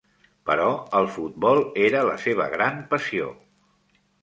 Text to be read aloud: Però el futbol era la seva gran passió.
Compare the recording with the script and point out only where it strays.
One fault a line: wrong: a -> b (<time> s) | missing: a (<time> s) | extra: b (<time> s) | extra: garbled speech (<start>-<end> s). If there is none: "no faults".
no faults